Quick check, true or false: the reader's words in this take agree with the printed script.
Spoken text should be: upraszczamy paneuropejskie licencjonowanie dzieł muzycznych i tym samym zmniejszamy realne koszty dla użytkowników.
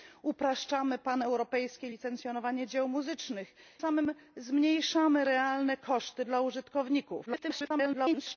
false